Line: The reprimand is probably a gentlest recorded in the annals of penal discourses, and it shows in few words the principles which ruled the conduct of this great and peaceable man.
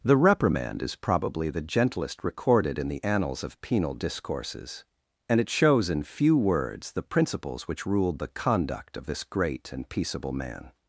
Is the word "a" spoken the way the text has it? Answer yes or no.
no